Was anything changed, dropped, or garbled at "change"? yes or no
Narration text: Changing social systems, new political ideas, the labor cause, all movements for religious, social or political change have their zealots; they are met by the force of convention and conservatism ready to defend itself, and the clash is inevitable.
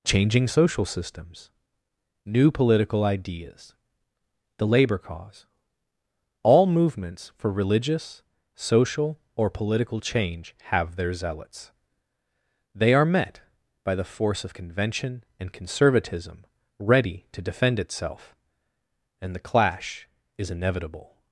no